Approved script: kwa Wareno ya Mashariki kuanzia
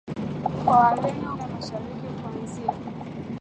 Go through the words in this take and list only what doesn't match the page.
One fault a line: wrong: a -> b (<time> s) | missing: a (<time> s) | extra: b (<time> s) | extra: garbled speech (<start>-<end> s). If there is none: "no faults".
no faults